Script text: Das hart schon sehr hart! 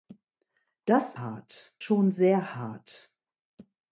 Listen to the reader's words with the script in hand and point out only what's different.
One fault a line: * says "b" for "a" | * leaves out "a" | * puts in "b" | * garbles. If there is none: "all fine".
all fine